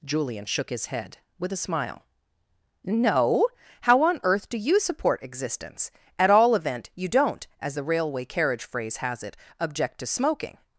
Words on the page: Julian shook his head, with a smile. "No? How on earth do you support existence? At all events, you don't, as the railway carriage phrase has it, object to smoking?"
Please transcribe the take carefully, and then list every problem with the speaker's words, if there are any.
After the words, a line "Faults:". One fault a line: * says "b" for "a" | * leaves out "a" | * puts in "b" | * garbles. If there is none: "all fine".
Julian shook his head, with a smile. "No? How on earth do you support existence? At all event, you don't, as the railway carriage phrase has it, object to smoking?"
Faults:
* says "event" for "events"